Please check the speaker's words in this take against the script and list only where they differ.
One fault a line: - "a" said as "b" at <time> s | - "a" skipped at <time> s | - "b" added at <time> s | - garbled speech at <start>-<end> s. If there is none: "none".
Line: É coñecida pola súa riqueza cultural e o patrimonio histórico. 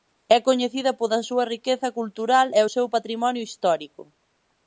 - "seu" added at 2.7 s